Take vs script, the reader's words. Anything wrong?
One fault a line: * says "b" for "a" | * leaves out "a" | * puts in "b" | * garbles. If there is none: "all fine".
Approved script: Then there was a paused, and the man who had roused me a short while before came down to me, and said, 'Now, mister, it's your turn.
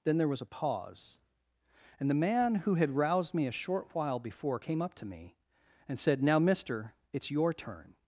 * says "pause" for "paused"
* says "up" for "down"